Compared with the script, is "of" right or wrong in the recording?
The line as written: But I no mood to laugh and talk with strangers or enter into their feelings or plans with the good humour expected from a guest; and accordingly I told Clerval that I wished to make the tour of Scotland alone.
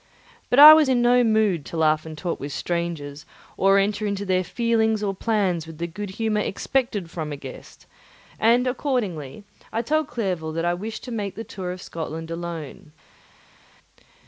right